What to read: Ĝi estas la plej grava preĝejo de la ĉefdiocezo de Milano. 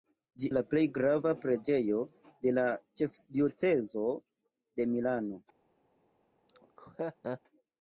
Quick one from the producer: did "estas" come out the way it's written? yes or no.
no